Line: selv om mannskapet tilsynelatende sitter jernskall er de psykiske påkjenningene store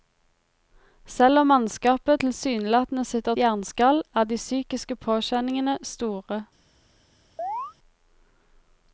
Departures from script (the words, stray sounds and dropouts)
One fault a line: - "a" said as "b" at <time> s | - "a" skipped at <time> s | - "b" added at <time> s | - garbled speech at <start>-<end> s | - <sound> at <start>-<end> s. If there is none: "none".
- chirp at 7.4-7.7 s